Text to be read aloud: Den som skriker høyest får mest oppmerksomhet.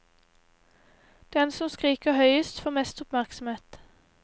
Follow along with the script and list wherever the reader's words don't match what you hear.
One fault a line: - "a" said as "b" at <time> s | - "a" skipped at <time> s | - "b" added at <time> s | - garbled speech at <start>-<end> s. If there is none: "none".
none